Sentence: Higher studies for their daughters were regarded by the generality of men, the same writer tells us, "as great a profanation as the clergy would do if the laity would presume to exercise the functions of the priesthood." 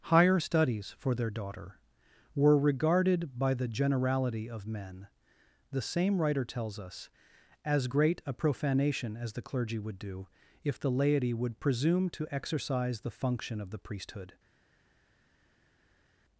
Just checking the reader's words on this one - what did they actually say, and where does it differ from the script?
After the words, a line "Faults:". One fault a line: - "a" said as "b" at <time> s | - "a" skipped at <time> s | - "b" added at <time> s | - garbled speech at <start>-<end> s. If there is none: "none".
Higher studies for their daughter were regarded by the generality of men, the same writer tells us, "as great a profanation as the clergy would do if the laity would presume to exercise the function of the priesthood."
Faults:
- "daughters" said as "daughter" at 1.3 s
- "functions" said as "function" at 13.1 s